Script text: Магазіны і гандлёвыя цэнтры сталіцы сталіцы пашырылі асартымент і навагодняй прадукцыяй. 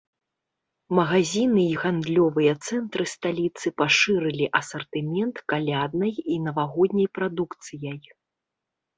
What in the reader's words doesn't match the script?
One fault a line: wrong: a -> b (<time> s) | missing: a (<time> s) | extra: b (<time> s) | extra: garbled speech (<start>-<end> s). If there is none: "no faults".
missing: сталіцы (3.7 s)
extra: каляднай (5.5 s)